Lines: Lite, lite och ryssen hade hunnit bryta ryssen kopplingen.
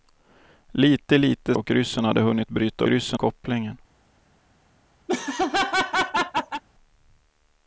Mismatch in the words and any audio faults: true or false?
true